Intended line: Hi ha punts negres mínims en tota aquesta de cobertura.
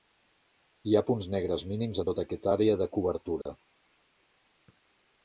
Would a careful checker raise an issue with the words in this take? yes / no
yes